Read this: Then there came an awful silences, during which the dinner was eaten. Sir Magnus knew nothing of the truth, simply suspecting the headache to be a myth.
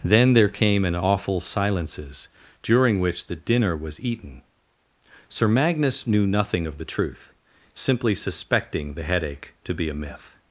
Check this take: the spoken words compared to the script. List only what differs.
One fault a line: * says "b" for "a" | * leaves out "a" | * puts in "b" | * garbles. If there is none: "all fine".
all fine